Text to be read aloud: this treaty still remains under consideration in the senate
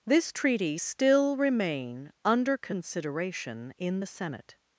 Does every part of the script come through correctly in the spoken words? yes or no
no